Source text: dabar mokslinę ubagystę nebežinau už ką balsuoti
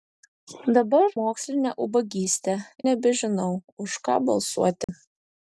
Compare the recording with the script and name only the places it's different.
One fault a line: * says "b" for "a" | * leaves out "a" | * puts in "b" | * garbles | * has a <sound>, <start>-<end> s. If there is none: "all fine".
* has a dropout, 4.8-4.9 s